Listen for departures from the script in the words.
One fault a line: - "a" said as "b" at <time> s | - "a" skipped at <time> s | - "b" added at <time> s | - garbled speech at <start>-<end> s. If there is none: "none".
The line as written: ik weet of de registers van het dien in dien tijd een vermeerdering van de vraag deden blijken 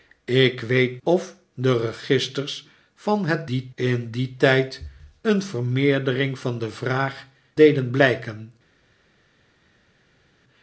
none